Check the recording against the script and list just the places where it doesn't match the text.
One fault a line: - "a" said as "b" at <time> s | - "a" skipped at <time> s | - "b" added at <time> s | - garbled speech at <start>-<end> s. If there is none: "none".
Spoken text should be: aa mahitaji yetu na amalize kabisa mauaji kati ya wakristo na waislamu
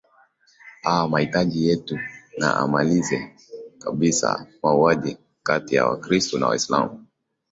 none